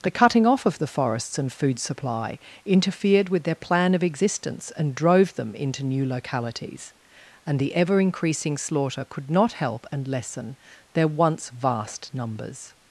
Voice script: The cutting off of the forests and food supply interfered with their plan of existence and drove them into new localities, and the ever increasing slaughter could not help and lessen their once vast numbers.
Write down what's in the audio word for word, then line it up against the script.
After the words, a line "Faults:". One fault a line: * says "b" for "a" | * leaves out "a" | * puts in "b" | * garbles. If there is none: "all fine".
The cutting off of the forests and food supply interfered with their plan of existence and drove them into new localities, and the ever increasing slaughter could not help and lessen their once vast numbers.
Faults:
all fine